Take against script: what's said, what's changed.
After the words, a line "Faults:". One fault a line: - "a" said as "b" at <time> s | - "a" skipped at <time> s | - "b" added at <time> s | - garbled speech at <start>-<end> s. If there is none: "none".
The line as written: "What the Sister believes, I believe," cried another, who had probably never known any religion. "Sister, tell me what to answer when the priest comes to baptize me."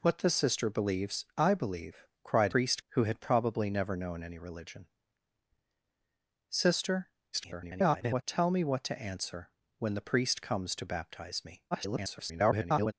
"What the Sister believes, I believe," cried priest, who had probably never known any religion. "Sister, [garbled] tell me what to answer when the priest comes to baptize me." [garbled]
Faults:
- "another" said as "priest" at 2.5 s
- garbled speech at 7.3-8.2 s
- garbled speech at 11.7-12.9 s